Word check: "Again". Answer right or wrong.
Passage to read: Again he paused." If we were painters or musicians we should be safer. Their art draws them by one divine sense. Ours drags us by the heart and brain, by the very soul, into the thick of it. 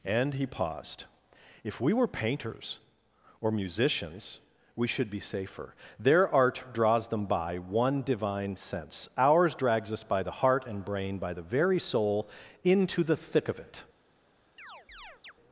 wrong